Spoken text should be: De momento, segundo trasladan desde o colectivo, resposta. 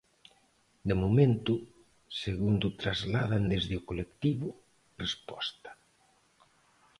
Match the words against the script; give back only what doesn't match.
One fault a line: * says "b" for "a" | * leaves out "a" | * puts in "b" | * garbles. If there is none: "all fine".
all fine